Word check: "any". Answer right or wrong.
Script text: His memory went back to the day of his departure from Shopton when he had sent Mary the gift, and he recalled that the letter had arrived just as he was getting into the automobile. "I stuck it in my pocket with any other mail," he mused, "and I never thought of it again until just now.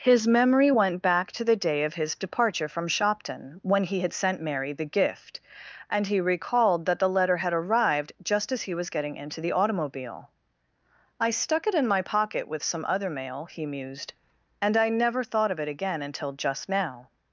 wrong